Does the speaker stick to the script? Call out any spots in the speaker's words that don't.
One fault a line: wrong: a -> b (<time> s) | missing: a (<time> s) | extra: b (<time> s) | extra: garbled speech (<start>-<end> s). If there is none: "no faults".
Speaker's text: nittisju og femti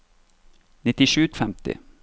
no faults